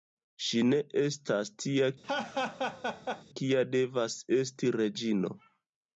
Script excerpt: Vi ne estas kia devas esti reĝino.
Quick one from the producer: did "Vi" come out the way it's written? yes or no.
no